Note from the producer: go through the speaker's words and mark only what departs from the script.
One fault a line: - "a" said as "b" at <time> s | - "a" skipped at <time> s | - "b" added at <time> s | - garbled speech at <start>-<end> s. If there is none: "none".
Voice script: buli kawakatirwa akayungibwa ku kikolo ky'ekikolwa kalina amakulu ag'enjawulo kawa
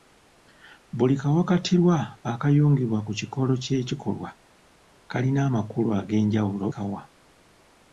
none